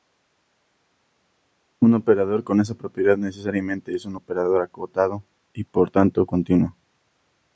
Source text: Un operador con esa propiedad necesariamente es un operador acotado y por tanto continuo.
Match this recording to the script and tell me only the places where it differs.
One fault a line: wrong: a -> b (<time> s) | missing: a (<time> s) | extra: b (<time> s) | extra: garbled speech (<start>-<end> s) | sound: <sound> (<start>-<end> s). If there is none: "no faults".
no faults